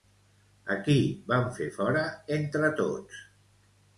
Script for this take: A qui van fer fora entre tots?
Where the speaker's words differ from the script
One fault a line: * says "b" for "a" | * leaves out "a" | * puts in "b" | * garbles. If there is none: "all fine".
all fine